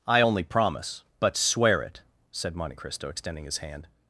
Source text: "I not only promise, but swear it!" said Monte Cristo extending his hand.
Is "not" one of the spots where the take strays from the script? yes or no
yes